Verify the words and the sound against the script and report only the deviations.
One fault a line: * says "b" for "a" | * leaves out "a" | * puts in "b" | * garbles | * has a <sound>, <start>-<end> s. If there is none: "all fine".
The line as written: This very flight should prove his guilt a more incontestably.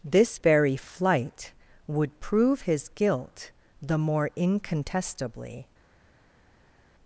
* says "would" for "should"
* says "the" for "a"